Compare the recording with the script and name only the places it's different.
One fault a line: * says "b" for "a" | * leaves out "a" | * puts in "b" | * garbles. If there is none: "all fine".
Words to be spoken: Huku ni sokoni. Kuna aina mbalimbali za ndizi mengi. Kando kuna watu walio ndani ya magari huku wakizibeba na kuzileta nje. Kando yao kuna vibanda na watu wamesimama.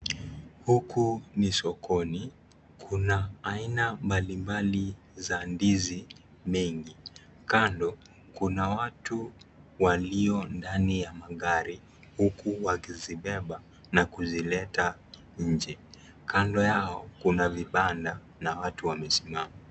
all fine